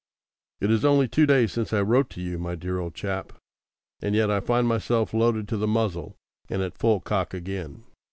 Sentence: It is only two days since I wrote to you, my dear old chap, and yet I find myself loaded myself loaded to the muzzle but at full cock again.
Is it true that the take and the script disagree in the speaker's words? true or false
true